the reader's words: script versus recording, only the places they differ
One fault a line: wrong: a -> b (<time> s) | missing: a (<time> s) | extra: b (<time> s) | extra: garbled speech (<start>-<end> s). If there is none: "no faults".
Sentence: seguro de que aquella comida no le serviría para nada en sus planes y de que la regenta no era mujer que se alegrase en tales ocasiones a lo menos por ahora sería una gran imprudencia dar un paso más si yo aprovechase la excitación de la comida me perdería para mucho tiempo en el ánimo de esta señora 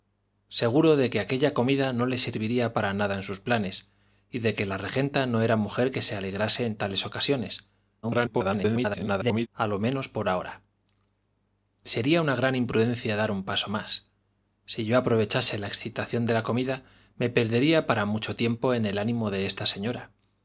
extra: garbled speech (8.0-9.5 s)